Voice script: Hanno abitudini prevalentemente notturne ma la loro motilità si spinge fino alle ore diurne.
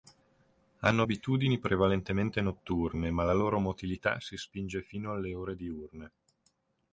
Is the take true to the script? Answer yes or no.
yes